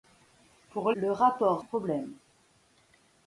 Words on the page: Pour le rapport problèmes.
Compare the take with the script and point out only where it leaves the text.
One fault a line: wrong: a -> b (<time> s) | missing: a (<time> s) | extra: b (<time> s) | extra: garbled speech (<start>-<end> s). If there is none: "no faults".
no faults